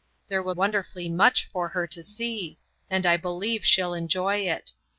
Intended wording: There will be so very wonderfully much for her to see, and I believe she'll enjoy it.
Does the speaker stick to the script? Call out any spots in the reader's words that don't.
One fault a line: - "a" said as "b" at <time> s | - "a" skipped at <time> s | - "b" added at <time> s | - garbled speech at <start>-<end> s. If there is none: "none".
- "be so very" skipped at 0.6 s